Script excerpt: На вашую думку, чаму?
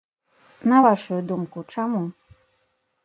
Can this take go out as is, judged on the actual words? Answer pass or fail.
pass